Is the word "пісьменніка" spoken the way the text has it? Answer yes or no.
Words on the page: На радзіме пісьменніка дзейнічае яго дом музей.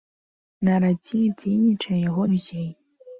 no